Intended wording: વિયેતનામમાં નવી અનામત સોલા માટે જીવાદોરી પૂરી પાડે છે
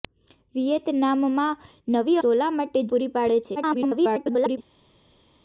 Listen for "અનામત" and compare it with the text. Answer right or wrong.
wrong